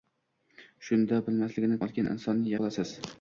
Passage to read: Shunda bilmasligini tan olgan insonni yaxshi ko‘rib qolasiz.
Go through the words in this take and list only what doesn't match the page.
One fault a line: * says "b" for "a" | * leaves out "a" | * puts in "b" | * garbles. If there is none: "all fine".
* leaves out "tan"
* leaves out "yaxshi ko‘rib"